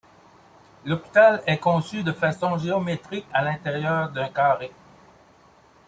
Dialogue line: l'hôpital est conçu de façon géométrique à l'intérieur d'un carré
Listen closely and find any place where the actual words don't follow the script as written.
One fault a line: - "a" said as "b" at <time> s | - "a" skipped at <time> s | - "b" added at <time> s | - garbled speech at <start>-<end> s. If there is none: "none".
none